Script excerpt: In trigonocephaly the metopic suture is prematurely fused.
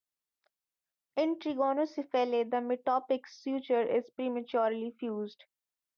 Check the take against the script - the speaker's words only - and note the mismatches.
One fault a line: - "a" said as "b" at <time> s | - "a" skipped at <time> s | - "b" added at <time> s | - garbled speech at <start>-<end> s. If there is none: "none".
none